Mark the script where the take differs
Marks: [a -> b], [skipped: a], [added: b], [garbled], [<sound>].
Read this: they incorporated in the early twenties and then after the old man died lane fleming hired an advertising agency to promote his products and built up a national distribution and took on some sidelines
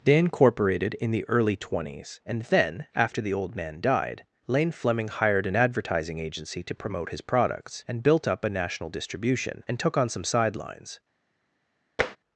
they incorporated in the early twenties and then after the old man died lane fleming hired an advertising agency to promote his products and built up a national distribution and took on some sidelines [tap]